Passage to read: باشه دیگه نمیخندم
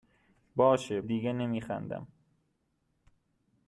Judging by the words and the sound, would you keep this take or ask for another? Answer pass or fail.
pass